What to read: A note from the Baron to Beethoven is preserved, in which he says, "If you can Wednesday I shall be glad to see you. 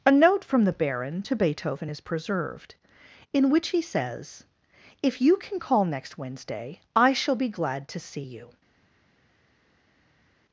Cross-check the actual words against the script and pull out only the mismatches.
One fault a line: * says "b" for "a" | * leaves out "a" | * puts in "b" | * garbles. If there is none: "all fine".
* puts in "call next"